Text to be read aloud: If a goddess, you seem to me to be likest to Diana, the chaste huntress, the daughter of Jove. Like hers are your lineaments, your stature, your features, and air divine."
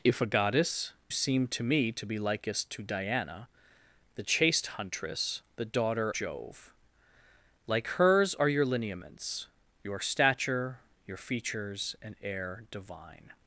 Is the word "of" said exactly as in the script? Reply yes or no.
no